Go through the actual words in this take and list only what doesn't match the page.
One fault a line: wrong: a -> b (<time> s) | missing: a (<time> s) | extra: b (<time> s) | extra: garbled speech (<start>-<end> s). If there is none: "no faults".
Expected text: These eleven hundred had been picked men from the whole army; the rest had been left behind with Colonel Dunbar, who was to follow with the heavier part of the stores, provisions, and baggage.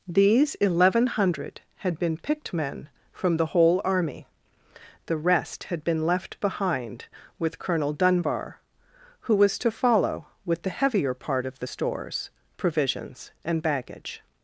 no faults